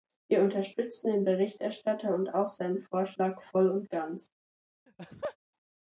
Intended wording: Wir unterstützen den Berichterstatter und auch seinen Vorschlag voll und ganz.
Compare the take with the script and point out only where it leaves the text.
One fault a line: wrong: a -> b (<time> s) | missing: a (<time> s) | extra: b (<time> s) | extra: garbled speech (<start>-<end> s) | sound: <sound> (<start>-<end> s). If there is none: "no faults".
sound: laugh (4.9-5.4 s)